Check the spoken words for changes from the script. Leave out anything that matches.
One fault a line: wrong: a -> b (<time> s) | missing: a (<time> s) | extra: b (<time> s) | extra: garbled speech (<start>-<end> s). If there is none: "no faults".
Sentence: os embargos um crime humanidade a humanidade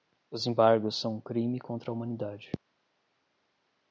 extra: são (0.9 s)
wrong: humanidade -> contra (1.6 s)